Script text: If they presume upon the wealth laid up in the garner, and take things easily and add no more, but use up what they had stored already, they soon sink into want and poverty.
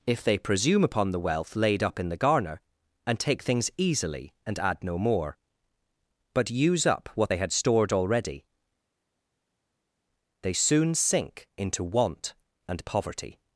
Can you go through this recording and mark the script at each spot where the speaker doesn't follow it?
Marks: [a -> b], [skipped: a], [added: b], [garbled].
If they presume upon the wealth laid up in the garner, and take things easily and add no more, but use up what they had stored already, they soon sink into want and poverty.